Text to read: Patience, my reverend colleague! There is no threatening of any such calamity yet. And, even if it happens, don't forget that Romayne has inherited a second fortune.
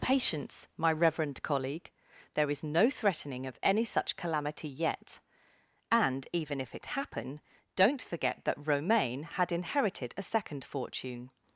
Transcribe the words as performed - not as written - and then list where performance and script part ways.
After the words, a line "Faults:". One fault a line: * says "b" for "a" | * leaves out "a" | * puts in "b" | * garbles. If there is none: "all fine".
Patience, my reverend colleague! There is no threatening of any such calamity yet. And, even if it happen, don't forget that Romayne had inherited a second fortune.
Faults:
* says "happen" for "happens"
* says "had" for "has"